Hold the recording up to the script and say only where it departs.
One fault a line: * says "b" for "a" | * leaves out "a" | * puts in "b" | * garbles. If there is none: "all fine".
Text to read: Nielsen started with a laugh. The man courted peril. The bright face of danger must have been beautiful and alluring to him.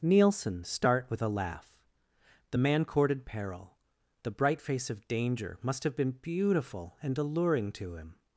* says "start" for "started"